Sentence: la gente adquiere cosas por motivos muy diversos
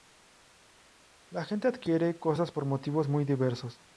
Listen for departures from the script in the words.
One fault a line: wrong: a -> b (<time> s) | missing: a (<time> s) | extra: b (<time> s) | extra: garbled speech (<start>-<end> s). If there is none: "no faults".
no faults